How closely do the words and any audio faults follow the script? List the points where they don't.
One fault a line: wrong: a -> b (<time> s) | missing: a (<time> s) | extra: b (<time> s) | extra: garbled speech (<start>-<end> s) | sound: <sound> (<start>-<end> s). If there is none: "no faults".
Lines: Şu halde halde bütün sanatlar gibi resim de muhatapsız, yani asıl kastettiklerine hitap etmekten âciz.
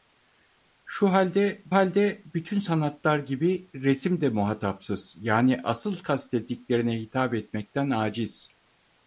no faults